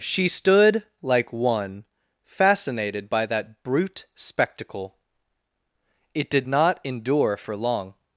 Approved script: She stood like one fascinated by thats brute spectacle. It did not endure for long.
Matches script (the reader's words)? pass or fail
fail